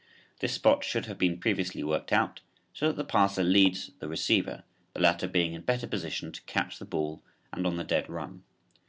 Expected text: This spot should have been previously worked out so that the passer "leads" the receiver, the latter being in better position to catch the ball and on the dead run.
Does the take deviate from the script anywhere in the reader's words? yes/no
no